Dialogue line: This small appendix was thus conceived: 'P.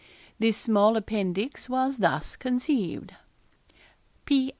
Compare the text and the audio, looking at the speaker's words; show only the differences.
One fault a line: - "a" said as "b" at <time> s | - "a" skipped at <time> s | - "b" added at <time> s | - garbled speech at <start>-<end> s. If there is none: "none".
none